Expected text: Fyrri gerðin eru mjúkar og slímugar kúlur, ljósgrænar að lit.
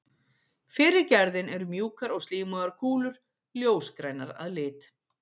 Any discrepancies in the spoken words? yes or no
no